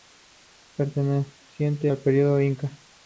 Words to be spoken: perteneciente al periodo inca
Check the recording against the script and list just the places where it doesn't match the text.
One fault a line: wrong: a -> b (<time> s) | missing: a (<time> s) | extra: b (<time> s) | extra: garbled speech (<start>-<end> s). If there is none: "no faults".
no faults